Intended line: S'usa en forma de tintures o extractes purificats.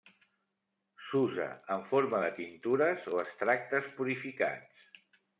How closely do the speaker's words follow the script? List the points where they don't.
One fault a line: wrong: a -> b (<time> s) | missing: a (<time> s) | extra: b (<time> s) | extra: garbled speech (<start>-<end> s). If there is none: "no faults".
no faults